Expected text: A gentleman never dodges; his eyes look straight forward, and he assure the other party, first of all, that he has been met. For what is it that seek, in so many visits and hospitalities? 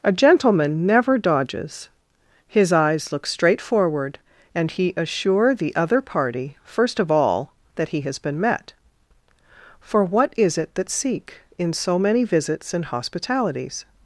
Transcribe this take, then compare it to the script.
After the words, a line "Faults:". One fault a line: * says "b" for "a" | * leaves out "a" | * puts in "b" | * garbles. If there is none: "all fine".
A gentleman never dodges; his eyes look straight forward, and he assure the other party, first of all, that he has been met. For what is it that seek, in so many visits and hospitalities?
Faults:
all fine